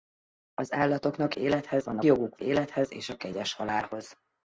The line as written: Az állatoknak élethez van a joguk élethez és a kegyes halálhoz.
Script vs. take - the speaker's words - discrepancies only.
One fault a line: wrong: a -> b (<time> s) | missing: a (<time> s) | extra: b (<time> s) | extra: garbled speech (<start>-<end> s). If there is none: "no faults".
no faults